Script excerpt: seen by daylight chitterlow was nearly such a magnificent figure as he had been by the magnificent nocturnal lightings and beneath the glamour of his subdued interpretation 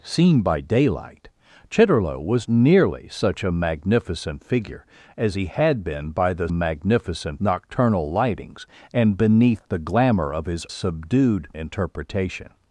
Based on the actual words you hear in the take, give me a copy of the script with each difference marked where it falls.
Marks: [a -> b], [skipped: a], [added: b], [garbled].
seen by daylight chitterlow was nearly such a magnificent figure as he had been by the magnificent nocturnal lightings and beneath the glamour of his subdued interpretation